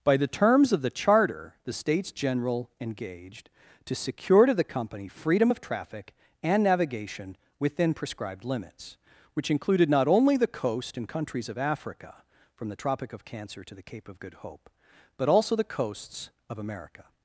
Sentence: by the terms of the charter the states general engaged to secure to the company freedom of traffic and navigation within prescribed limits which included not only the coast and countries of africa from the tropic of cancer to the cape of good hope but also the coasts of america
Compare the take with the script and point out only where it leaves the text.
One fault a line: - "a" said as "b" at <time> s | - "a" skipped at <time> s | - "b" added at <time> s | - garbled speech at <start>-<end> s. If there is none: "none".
none